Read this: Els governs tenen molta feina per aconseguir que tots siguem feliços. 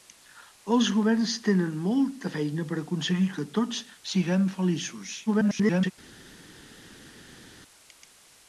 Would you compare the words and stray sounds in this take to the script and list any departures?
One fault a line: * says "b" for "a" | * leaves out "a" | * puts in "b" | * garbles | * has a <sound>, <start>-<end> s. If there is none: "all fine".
* garbles